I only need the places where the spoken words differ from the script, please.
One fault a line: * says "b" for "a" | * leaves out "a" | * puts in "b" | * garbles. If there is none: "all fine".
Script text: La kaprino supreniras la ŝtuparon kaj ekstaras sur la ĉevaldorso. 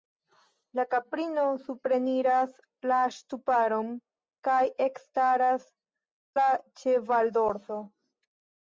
* leaves out "sur"